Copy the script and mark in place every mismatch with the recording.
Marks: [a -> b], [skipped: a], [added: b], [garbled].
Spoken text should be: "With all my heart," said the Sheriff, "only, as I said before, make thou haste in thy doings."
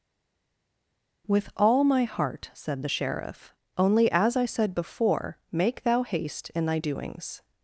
"With all my heart," said the Sheriff, "only, as I said before, make thou haste in thy doings."